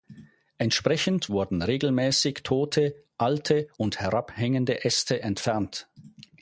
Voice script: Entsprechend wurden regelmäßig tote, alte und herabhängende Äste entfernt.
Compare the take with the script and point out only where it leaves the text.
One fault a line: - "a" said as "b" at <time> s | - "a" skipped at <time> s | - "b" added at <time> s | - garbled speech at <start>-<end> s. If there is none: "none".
none